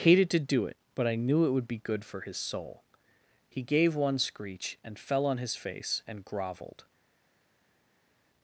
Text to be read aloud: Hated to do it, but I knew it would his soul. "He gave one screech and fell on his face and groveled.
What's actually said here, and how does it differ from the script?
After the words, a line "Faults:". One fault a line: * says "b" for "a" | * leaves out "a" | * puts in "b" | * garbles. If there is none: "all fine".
Hated to do it, but I knew it would be good for his soul. "He gave one screech and fell on his face and groveled.
Faults:
* puts in "be good for"